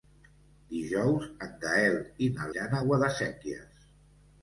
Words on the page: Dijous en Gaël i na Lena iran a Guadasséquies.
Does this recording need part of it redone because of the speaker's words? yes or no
yes